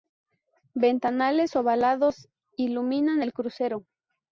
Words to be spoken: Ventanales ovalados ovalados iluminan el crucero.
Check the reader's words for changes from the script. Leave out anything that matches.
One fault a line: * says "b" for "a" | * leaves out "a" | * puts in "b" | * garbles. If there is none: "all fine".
* leaves out "ovalados"